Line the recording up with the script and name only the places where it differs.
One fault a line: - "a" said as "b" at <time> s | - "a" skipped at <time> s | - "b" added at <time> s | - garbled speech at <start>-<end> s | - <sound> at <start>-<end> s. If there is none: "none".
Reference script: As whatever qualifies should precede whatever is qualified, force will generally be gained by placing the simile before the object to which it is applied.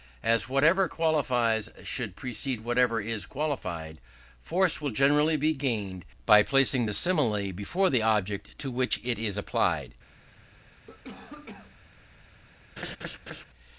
- cough at 10.9-11.8 s
- laugh at 12.8-13.5 s